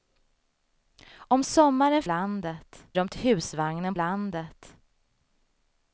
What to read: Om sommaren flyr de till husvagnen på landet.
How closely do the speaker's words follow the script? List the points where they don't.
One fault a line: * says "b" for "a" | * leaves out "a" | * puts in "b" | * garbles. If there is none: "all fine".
* says "landet" for "flyr"
* leaves out "på"